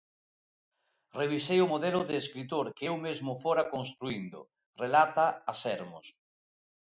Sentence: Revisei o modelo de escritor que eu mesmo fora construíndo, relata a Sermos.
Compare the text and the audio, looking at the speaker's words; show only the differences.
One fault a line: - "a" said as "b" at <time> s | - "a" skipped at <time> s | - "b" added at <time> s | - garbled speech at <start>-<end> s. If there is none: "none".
none